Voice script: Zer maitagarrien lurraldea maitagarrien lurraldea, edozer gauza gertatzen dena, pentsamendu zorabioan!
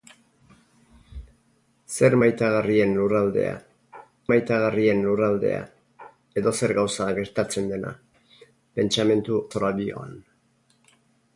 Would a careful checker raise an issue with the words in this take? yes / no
no